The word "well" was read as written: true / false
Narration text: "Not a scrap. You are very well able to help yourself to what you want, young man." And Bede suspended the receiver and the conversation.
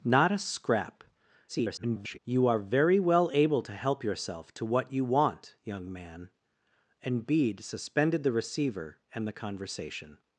true